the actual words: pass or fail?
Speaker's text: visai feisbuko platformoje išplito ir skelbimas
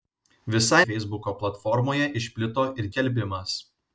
pass